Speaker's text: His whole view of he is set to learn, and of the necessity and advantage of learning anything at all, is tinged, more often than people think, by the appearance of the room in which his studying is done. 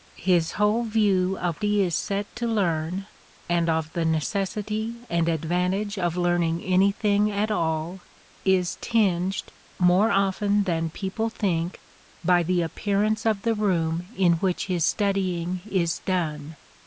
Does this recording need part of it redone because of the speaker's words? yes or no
no